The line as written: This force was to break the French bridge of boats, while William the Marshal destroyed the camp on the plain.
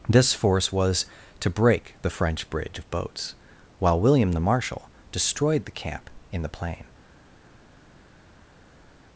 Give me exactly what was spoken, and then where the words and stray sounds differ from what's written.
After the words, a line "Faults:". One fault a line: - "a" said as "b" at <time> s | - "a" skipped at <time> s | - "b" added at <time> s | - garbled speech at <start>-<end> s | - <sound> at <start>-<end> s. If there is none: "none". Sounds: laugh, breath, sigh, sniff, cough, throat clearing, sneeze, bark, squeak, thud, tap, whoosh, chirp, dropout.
This force was to break the French bridge of boats, while William the Marshal destroyed the camp in the plain.
Faults:
- "on" said as "in" at 6.3 s